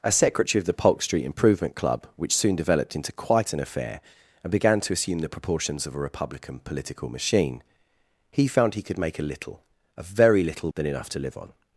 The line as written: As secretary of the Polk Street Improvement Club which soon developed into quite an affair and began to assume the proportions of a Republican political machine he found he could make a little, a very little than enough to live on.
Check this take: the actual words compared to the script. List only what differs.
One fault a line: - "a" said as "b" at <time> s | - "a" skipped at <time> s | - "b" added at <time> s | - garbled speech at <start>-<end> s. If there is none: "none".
none